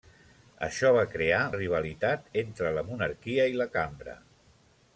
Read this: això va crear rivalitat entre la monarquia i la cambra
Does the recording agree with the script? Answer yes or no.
yes